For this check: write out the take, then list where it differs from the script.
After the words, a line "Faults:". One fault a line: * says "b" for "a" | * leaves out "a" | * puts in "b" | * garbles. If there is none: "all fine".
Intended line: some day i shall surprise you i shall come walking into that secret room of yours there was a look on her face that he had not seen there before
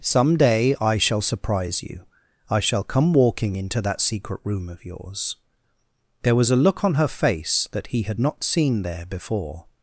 some day i shall surprise you i shall come walking into that secret room of yours there was a look on her face that he had not seen there before
Faults:
all fine